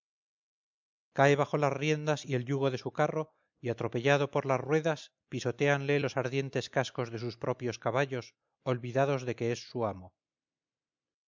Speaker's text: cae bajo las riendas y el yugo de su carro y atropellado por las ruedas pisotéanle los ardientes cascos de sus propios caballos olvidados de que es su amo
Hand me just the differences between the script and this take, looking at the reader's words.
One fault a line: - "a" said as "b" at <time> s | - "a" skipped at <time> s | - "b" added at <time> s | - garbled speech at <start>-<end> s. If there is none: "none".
none